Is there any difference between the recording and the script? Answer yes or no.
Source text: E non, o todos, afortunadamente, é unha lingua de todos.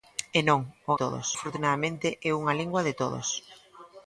no